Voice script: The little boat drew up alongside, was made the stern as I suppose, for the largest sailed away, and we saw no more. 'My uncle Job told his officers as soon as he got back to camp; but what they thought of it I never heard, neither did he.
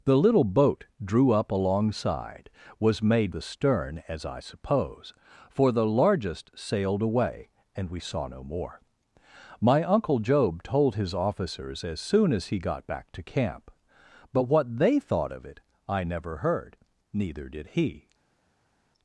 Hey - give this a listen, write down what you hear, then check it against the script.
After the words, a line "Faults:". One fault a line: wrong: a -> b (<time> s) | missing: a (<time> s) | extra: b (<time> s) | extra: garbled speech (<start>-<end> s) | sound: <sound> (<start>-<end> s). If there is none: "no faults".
The little boat drew up alongside, was made the stern as I suppose, for the largest sailed away, and we saw no more. 'My uncle Job told his officers as soon as he got back to camp; but what they thought of it I never heard, neither did he.
Faults:
no faults